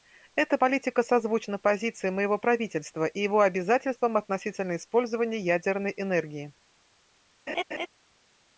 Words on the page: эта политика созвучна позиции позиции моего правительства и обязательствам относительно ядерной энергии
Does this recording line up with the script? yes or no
no